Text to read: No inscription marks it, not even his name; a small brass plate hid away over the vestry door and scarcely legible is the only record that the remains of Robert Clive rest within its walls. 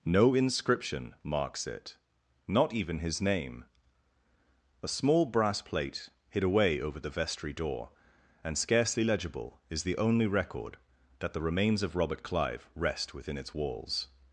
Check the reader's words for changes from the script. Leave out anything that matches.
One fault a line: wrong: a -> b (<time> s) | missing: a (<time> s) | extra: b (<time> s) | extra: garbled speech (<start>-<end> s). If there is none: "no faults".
no faults